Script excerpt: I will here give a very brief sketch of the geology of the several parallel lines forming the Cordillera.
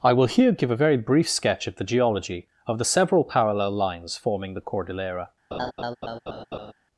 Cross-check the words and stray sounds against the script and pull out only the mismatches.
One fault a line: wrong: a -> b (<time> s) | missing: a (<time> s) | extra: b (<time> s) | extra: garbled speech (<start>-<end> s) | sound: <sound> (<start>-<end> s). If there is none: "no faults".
sound: laugh (5.5-6.7 s)